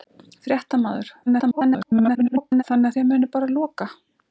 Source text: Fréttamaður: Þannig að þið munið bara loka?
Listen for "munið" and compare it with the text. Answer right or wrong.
right